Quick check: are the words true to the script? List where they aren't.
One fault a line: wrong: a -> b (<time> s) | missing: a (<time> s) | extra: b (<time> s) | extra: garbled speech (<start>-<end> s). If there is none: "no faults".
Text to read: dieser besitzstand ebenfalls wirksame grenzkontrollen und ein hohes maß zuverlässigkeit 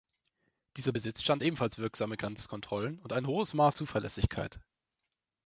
no faults